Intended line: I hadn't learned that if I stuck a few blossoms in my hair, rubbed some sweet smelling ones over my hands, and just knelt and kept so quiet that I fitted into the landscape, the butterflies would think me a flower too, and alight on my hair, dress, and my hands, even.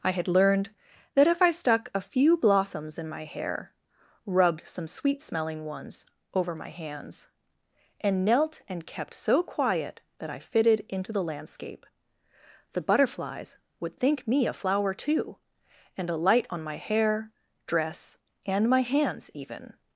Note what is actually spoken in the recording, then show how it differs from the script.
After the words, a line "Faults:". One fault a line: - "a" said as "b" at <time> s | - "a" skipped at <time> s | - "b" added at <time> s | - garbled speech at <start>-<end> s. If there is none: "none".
I had learned that if I stuck a few blossoms in my hair, rubbed some sweet smelling ones over my hands, and knelt and kept so quiet that I fitted into the landscape, the butterflies would think me a flower too, and alight on my hair, dress, and my hands, even.
Faults:
- "hadn't" said as "had" at 0.1 s
- "just" skipped at 8.2 s